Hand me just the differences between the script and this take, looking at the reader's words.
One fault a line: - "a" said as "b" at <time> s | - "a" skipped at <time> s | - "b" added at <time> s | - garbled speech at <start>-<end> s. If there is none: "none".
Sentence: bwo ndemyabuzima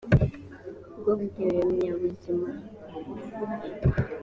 none